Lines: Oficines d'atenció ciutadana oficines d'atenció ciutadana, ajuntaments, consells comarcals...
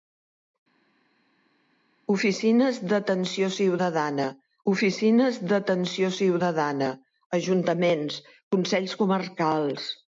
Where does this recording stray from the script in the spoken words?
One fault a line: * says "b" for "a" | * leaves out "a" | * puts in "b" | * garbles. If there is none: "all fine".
all fine